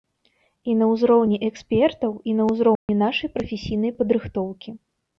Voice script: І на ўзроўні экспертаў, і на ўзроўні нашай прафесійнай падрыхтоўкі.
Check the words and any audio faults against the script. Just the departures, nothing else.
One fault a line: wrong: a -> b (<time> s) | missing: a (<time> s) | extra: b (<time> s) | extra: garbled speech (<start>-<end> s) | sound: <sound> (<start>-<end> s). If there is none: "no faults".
sound: dropout (2.8-2.9 s)